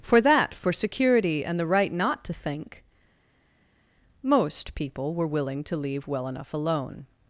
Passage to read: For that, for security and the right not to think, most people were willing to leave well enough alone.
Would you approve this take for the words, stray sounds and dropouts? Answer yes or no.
yes